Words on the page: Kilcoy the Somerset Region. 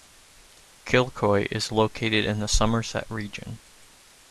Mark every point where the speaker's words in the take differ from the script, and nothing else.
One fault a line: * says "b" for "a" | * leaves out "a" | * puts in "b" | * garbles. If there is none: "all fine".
* puts in "is located in"